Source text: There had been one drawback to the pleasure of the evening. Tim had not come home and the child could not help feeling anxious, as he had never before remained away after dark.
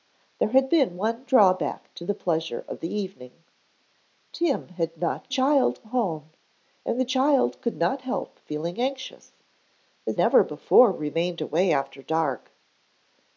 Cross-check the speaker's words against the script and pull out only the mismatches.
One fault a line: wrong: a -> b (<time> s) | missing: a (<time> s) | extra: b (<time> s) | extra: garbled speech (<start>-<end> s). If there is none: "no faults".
wrong: come -> child (5.3 s)
missing: he had (10.2 s)